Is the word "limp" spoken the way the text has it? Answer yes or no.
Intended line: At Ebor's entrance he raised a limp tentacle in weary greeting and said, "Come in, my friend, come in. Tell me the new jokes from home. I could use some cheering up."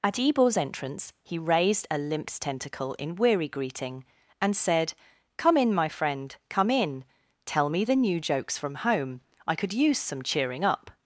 no